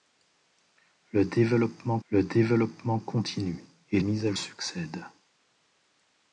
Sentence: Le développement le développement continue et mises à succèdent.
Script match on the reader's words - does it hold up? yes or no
yes